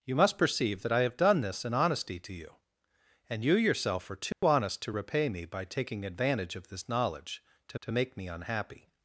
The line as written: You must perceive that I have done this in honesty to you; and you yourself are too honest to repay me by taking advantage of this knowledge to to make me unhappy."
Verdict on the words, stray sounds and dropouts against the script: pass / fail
fail